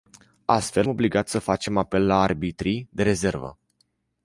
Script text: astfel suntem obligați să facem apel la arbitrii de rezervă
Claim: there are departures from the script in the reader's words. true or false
true